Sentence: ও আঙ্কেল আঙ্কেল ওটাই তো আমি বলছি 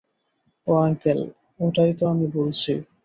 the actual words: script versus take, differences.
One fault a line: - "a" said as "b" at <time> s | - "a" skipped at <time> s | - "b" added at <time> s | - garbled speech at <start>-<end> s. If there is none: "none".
- "আঙ্কেল" skipped at 1.2 s